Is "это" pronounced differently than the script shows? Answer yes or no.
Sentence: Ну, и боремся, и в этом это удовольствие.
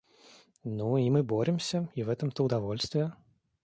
yes